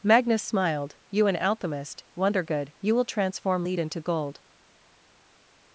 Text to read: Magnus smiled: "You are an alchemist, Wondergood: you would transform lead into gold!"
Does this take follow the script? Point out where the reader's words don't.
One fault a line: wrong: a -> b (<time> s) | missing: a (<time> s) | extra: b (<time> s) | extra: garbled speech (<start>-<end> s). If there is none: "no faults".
missing: are (1.3 s)
wrong: would -> will (3.0 s)